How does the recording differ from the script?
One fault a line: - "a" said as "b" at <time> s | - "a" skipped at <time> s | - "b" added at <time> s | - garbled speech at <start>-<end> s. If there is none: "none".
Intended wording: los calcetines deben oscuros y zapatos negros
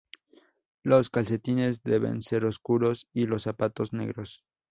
- "ser" added at 2.2 s
- "los" added at 3.3 s